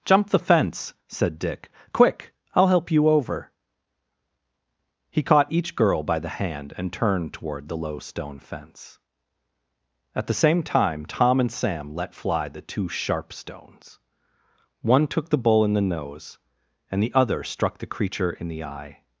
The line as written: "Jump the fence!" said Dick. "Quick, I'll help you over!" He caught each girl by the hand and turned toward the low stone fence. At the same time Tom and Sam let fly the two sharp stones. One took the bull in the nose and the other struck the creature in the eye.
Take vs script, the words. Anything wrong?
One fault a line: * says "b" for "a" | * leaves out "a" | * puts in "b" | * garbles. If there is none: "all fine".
all fine